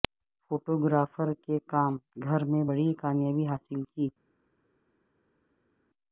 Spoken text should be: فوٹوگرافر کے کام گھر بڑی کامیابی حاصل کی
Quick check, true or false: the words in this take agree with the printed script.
false